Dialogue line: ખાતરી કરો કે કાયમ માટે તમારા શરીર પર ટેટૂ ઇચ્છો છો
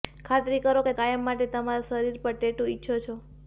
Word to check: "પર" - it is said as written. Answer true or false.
true